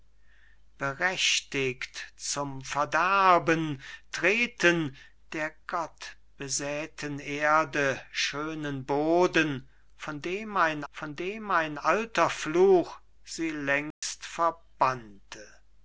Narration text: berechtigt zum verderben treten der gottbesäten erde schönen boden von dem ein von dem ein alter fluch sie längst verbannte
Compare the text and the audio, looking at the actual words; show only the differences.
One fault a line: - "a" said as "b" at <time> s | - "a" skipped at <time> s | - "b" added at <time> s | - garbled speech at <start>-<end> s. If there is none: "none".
none